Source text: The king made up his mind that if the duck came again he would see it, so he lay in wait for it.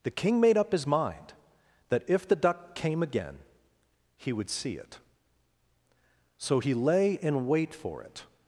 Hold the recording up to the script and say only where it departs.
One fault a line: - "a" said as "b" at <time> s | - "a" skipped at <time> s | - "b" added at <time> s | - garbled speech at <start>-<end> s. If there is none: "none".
none